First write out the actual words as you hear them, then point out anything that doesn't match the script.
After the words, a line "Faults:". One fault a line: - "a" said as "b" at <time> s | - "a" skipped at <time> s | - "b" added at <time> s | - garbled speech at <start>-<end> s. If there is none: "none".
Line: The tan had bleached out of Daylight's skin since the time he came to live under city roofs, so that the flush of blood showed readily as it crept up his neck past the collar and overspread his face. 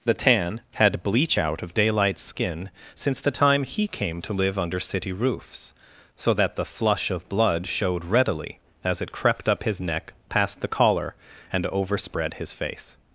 The tan had bleach out of Daylight's skin since the time he came to live under city roofs, so that the flush of blood showed readily as it crept up his neck past the collar and overspread his face.
Faults:
- "bleached" said as "bleach" at 1.0 s